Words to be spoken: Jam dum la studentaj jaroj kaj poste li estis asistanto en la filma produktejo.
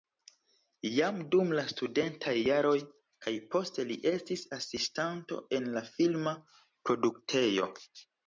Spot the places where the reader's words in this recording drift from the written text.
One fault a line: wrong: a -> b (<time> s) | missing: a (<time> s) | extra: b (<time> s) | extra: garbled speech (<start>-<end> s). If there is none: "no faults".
no faults